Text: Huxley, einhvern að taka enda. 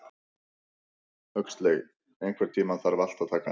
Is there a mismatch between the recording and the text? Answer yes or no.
yes